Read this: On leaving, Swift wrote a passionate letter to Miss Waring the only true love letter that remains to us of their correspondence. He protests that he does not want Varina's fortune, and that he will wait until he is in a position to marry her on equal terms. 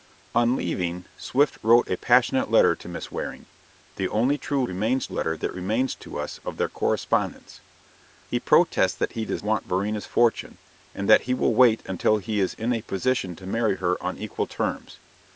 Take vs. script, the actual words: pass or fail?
fail